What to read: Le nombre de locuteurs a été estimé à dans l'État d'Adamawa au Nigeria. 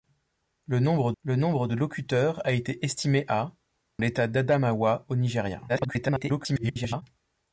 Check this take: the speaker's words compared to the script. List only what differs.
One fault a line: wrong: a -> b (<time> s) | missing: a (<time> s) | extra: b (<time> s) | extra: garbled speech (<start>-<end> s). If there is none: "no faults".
extra: le nombre (1.2 s)
missing: dans (3.5 s)
extra: garbled speech (5.7-7.0 s)